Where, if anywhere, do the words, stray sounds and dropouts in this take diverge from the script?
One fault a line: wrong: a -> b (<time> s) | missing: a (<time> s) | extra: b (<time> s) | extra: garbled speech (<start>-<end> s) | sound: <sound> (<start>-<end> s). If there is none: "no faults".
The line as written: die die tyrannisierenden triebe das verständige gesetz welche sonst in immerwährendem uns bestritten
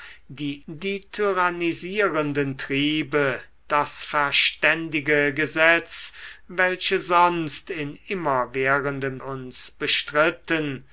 no faults